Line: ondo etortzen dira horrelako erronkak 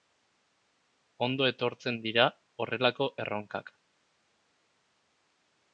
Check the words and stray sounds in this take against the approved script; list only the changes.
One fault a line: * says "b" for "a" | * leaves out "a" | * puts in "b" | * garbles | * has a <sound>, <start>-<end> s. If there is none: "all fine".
all fine